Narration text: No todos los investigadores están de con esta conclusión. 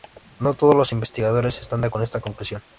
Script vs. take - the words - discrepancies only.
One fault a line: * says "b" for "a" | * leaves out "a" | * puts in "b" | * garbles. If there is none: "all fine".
all fine